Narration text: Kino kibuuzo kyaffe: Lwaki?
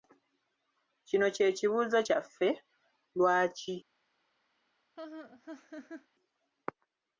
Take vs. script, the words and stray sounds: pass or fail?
fail